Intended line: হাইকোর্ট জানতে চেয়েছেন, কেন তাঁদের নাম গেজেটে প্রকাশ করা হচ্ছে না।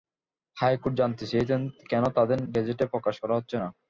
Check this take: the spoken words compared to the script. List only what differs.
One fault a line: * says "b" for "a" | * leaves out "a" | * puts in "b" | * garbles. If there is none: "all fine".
* leaves out "নাম"